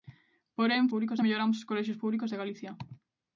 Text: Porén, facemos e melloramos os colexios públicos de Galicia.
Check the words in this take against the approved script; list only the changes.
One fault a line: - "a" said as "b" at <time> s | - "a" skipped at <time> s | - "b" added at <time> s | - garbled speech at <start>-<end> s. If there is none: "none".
- "facemos" said as "públicos" at 0.9 s